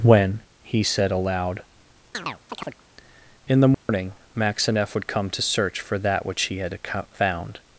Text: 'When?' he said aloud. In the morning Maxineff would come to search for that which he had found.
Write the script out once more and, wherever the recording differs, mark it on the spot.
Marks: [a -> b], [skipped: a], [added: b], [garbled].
'When?' he said aloud. In the morning Maxineff would come to search for that which he had found.